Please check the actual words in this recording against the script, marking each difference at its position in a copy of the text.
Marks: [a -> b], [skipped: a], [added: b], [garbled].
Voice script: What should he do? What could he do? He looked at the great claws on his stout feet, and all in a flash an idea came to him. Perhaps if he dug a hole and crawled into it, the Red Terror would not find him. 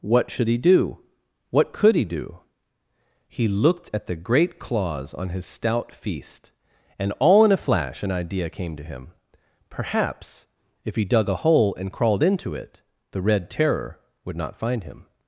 What should he do? What could he do? He looked at the great claws on his stout [feet, -> feast] and all in a flash an idea came to him. Perhaps if he dug a hole and crawled into it, the Red Terror would not find him.